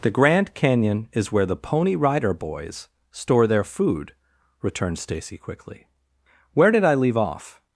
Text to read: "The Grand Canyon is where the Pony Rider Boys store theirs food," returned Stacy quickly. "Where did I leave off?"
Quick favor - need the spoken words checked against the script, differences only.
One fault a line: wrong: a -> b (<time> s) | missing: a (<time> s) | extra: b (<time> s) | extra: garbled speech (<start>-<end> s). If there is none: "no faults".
wrong: theirs -> their (3.5 s)